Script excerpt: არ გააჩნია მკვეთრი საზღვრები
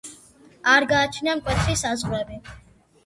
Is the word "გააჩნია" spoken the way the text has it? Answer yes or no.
yes